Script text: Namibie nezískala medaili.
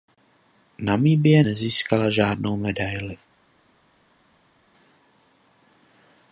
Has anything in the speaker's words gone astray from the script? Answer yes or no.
yes